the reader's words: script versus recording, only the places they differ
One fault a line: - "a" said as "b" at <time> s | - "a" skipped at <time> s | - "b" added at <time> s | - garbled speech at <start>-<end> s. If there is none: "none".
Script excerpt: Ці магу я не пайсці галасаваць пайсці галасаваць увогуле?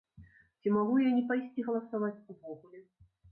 - "пайсці галасаваць" skipped at 2.1 s